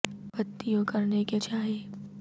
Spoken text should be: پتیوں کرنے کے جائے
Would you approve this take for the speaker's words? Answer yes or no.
yes